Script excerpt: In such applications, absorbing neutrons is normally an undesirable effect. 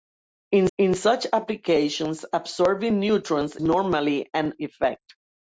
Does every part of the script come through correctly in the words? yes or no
no